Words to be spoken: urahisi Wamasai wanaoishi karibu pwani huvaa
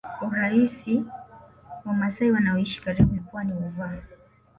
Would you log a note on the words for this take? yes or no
no